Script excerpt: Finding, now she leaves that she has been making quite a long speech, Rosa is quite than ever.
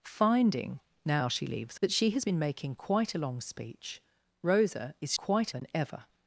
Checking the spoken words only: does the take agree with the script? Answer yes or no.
yes